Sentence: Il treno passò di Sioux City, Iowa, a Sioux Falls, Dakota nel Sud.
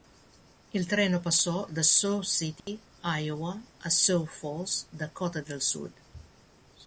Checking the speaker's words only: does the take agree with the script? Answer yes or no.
no